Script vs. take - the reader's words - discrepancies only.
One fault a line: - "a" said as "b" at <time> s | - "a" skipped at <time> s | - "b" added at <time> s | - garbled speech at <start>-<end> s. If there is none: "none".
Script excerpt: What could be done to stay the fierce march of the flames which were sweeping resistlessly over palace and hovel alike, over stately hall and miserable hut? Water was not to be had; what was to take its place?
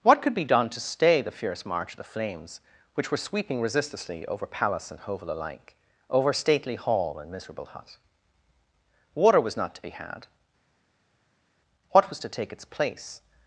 none